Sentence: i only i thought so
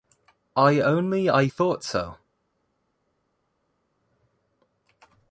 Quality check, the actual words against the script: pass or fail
pass